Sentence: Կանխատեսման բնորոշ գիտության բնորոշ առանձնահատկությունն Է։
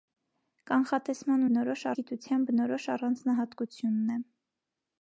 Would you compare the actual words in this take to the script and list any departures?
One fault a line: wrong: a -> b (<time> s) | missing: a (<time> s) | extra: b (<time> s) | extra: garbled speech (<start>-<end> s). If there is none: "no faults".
no faults